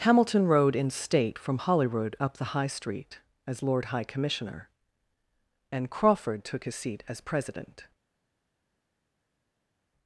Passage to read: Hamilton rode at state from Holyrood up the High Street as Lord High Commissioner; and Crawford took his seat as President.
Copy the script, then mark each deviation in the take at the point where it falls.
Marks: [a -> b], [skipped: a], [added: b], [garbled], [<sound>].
Hamilton rode [at -> in] state from Holyrood up the High Street as Lord High Commissioner; and Crawford took his seat as President.